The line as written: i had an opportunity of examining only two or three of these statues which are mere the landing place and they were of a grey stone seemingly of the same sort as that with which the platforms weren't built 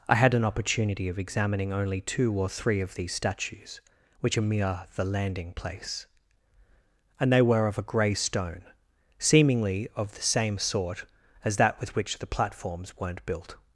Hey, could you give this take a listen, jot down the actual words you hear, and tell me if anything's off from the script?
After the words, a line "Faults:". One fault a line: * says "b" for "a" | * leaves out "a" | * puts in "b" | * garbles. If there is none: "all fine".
i had an opportunity of examining only two or three of these statues which are mere the landing place and they were of a grey stone seemingly of the same sort as that with which the platforms weren't built
Faults:
all fine